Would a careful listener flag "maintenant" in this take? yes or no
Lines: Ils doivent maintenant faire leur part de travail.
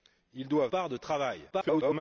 yes